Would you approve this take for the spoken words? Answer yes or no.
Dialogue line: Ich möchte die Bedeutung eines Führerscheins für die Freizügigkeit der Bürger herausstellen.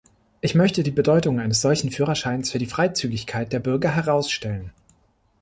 no